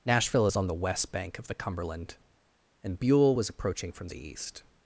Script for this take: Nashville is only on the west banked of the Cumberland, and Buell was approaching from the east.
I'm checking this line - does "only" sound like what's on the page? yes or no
no